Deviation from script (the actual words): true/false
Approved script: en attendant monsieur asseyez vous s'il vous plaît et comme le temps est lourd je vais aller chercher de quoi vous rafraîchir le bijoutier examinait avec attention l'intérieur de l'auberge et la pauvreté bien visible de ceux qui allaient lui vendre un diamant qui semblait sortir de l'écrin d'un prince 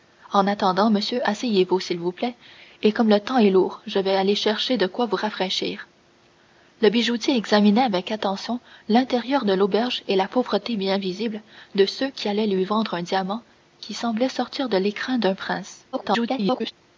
true